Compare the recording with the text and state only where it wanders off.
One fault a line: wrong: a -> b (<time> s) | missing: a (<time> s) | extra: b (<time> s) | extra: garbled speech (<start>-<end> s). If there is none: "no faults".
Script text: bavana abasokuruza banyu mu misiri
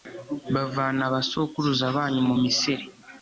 no faults